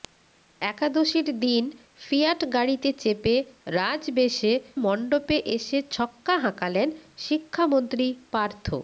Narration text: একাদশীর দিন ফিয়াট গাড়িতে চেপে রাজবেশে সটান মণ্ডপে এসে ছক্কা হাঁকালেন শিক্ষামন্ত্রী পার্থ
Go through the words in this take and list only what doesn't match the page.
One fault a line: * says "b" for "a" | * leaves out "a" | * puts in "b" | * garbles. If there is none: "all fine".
* leaves out "সটান"